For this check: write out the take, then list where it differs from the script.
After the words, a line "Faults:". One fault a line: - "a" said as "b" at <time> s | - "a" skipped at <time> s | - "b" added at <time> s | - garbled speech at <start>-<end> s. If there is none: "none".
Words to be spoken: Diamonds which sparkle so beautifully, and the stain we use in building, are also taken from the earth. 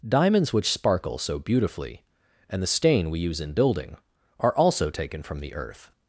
Diamonds which sparkle so beautifully, and the stain we use in building, are also taken from the earth.
Faults:
none